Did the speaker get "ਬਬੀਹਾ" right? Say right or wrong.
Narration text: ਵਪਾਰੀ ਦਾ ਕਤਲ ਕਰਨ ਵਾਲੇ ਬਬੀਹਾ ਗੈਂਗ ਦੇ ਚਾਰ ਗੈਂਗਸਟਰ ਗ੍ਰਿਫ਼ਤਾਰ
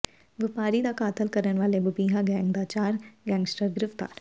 right